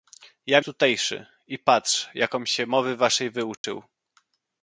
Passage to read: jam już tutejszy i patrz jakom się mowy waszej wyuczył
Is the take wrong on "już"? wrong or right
wrong